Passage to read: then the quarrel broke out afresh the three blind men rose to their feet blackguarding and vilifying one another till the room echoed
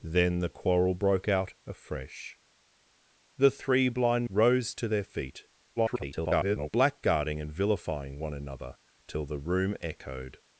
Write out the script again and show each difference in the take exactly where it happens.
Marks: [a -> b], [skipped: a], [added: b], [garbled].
then the quarrel broke out afresh the three blind [skipped: men] rose to their feet [garbled] blackguarding and vilifying one another till the room echoed